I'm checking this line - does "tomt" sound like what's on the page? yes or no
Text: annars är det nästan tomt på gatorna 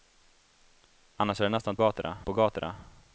no